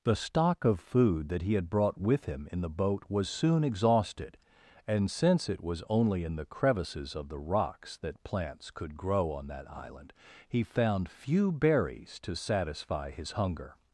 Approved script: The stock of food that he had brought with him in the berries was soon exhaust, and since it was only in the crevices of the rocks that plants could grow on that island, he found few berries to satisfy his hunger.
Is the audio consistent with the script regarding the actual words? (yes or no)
no